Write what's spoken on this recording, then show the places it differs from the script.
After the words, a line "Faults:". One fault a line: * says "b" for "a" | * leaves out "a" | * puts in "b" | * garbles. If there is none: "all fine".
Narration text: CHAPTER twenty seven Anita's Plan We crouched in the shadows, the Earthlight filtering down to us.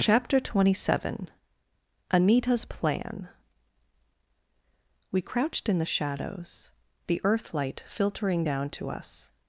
CHAPTER twenty seven Anita's Plan We crouched in the shadows, the Earthlight filtering down to us.
Faults:
all fine